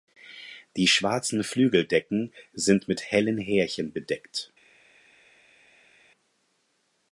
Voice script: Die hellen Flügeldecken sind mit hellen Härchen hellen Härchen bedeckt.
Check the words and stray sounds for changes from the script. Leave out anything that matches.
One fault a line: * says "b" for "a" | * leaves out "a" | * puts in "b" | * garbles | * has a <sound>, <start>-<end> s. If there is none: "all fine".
* says "schwarzen" for "hellen"
* leaves out "hellen Härchen"